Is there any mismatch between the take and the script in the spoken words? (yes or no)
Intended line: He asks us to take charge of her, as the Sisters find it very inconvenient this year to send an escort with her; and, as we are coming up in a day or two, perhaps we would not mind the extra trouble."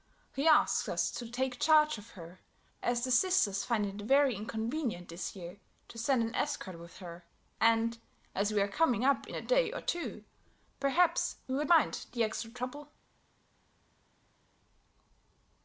yes